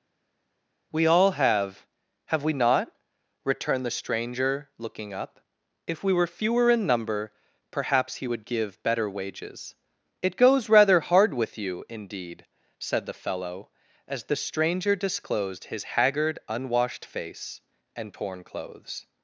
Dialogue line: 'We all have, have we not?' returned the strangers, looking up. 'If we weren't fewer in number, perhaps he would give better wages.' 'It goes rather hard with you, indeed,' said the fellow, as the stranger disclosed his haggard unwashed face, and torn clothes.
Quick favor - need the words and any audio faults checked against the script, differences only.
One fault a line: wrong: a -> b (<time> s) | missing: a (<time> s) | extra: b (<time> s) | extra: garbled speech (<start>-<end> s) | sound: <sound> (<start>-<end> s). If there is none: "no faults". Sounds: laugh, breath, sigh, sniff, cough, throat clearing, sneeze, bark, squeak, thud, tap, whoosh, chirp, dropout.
wrong: strangers -> stranger (3.9 s)
wrong: weren't -> were (6.1 s)